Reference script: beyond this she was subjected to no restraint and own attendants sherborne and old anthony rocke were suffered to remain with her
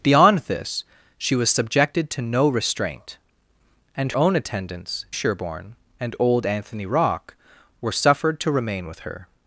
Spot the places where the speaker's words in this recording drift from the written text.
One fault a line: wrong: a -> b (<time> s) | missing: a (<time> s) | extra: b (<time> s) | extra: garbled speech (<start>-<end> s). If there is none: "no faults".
no faults